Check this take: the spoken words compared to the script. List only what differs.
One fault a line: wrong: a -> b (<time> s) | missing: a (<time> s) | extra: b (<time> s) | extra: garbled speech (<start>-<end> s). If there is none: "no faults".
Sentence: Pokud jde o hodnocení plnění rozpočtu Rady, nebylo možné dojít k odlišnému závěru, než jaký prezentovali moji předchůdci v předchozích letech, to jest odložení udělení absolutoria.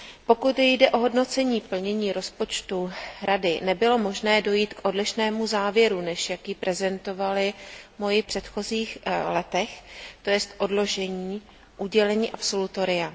missing: předchůdci (8.2 s)